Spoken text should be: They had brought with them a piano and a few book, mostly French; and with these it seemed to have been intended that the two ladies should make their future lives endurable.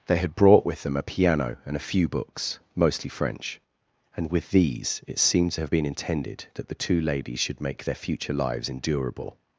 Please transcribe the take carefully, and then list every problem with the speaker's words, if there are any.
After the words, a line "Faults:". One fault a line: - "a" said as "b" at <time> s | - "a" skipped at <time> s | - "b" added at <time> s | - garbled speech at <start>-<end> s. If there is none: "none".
They had brought with them a piano and a few books, mostly French; and with these it seemed to have been intended that the two ladies should make their future lives endurable.
Faults:
- "book" said as "books" at 2.1 s